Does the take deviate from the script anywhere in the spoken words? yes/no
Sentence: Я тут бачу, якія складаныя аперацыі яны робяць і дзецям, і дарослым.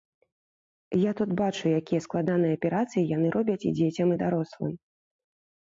no